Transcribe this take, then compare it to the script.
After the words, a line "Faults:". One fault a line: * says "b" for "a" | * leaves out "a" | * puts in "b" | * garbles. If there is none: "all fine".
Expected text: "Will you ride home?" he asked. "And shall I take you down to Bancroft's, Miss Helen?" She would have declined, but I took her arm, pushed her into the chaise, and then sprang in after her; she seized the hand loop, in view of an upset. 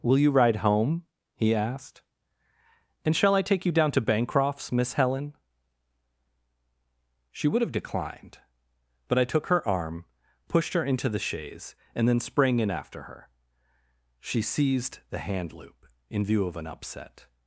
"Will you ride home?" he asked. "And shall I take you down to Bancroft's, Miss Helen?" She would have declined, but I took her arm, pushed her into the chaise, and then sprang in after her; she seized the hand loop, in view of an upset.
Faults:
all fine